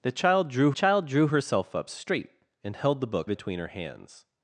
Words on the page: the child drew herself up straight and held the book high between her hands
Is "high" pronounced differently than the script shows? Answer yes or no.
yes